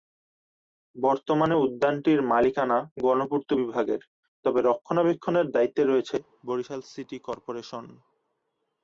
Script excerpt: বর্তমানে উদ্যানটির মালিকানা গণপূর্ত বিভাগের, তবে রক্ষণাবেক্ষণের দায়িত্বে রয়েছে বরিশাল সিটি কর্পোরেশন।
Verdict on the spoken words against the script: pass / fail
pass